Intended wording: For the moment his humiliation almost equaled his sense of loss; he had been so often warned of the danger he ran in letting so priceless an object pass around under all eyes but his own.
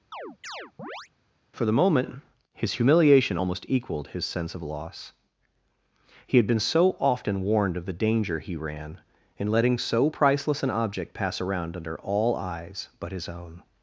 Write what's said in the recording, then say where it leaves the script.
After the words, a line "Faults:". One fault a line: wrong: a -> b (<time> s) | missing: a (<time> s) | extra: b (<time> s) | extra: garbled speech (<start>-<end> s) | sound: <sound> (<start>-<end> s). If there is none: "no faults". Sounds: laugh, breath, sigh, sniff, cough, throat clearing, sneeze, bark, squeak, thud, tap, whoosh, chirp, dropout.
For the moment his humiliation almost equaled his sense of loss; he had been so often warned of the danger he ran in letting so priceless an object pass around under all eyes but his own.
Faults:
sound: chirp (0.1-1.1 s)